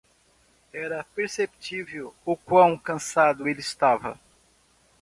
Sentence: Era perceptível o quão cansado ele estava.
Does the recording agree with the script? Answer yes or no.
yes